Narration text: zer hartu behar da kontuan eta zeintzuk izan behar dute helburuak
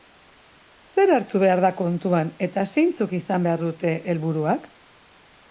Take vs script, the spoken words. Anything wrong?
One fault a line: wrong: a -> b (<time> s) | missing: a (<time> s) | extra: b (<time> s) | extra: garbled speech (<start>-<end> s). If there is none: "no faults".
no faults